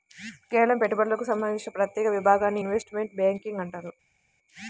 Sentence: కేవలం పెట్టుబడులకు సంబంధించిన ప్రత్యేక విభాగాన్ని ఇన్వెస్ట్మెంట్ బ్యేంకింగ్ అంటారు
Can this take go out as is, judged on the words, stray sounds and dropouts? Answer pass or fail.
pass